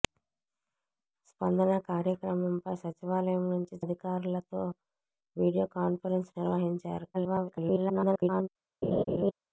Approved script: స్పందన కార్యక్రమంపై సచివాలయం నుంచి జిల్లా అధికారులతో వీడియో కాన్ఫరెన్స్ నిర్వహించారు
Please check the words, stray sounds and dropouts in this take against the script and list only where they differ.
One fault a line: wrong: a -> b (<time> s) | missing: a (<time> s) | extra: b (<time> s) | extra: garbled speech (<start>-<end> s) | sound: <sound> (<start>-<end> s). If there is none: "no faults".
missing: జిల్లా (3.8 s)
extra: garbled speech (7.1-8.5 s)
sound: laugh (8.8-9.3 s)